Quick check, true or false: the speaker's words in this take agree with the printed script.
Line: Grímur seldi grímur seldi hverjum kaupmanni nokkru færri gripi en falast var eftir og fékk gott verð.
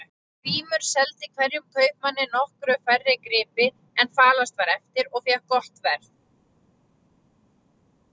false